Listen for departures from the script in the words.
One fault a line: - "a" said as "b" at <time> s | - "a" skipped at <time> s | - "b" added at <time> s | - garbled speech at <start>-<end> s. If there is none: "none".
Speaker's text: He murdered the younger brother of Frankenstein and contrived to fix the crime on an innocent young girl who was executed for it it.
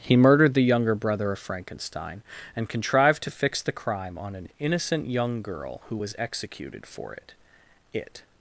none